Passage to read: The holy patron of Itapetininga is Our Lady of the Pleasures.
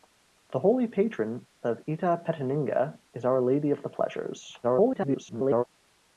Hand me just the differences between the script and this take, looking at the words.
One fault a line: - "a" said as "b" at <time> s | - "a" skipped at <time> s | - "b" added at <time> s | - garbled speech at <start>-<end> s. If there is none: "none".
- garbled speech at 4.6-5.6 s